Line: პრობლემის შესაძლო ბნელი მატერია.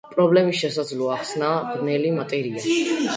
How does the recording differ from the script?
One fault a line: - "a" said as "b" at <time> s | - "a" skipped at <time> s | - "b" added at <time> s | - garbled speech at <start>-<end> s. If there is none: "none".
- "ახსნაა" added at 1.2 s